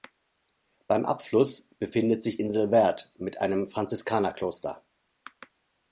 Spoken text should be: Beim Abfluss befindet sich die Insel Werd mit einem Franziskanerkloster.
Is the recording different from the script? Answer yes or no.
yes